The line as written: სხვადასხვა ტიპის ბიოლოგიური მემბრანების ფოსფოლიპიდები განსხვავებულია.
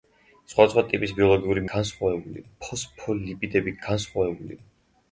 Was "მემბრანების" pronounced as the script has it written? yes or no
no